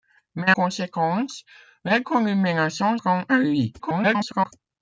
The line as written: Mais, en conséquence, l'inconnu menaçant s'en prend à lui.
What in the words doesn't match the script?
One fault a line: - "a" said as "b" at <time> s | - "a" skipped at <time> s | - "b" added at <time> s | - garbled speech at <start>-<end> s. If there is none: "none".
- "en" skipped at 0.5 s
- "s'en" skipped at 3.0 s
- garbled speech at 3.8-4.5 s